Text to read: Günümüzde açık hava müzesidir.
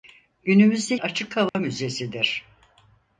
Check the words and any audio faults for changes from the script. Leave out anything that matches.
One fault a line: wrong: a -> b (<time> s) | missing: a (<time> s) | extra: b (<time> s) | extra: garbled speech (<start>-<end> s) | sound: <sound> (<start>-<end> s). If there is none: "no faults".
sound: dropout (1.5-1.5 s)